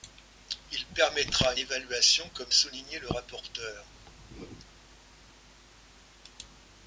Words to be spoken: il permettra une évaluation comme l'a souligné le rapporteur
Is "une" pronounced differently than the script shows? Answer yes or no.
yes